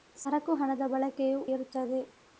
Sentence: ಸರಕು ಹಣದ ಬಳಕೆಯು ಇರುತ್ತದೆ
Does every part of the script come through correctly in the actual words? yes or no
yes